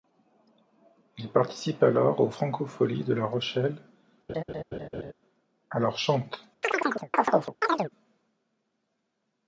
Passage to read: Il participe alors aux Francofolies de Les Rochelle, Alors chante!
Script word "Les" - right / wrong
wrong